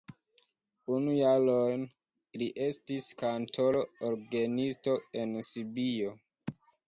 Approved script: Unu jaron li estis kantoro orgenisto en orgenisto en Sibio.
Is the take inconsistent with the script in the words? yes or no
yes